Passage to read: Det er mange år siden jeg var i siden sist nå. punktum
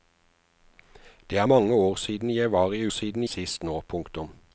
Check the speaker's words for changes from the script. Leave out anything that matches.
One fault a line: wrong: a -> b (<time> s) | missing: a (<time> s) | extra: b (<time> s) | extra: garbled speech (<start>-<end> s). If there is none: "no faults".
no faults